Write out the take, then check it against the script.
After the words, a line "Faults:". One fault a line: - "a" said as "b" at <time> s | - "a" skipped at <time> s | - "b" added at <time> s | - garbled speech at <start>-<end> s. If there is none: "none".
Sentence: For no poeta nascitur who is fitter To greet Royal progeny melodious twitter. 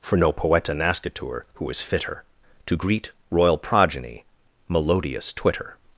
For no poeta nascitur who is fitter To greet Royal progeny melodious twitter.
Faults:
none